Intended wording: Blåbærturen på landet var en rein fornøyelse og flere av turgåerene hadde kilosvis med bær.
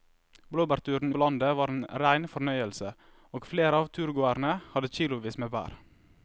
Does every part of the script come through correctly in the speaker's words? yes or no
yes